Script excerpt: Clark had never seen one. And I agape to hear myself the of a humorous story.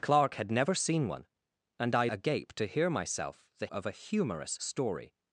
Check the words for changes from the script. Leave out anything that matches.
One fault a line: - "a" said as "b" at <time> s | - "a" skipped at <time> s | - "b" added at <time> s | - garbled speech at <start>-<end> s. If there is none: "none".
none